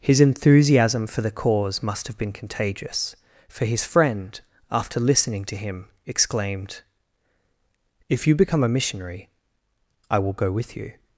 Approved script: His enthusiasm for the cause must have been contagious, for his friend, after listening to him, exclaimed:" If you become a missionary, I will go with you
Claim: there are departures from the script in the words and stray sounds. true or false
false